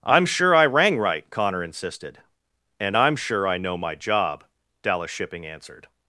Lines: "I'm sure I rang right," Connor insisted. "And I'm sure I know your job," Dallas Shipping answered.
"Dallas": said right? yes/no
yes